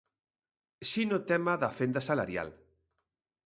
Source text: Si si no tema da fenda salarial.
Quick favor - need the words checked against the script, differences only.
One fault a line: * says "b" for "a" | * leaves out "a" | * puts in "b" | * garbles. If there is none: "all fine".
* leaves out "si"